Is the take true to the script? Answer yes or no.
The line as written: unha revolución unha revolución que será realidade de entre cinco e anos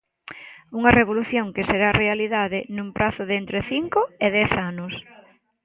no